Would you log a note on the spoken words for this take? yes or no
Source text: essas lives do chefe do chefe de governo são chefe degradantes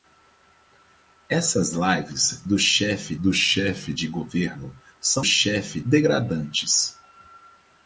no